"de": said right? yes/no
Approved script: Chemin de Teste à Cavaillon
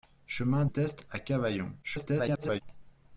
no